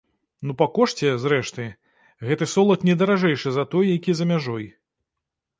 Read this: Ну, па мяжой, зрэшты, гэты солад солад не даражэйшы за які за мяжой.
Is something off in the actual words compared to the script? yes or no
yes